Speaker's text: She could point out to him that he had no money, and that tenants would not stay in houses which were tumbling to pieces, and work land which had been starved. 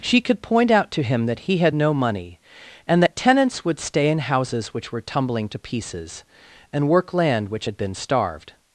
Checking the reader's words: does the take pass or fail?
fail